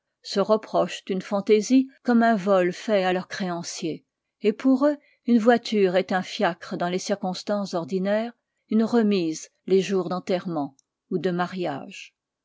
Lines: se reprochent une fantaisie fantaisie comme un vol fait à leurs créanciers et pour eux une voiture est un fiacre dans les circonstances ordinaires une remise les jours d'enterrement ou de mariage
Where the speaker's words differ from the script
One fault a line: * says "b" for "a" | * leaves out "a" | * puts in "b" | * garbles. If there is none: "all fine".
* leaves out "fantaisie"